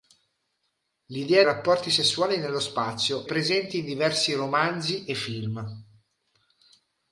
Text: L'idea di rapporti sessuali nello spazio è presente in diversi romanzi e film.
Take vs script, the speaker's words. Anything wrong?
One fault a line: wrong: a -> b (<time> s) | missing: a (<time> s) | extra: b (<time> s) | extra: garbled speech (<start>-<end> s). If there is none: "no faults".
missing: di (1.4 s)
missing: è (3.3 s)